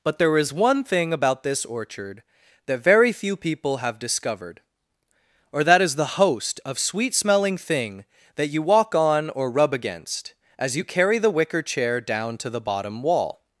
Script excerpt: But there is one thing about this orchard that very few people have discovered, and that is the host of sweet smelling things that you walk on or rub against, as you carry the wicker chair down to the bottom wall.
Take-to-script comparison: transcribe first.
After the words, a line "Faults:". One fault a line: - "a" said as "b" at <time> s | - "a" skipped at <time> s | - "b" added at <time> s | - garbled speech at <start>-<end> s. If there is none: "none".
But there is one thing about this orchard that very few people have discovered, or that is the host of sweet smelling thing that you walk on or rub against, as you carry the wicker chair down to the bottom wall.
Faults:
- "and" said as "or" at 5.5 s
- "things" said as "thing" at 7.6 s